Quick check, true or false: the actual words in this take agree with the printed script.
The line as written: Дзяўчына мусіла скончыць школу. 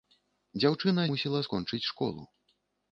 true